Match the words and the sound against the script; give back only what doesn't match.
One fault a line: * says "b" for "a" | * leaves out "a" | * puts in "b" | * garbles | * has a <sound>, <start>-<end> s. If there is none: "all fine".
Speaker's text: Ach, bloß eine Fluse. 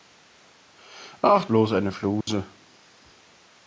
* has a dropout, 2.2-2.3 s